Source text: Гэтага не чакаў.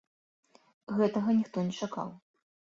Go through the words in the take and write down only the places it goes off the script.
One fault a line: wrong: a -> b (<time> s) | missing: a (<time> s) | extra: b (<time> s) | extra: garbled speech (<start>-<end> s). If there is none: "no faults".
extra: ніхто (1.4 s)